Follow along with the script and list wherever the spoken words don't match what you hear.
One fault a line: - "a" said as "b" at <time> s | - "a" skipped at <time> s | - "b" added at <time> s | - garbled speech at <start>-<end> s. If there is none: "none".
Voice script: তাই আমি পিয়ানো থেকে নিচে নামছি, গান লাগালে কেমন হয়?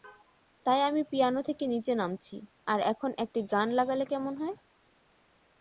- "আর এখন একটি" added at 2.7 s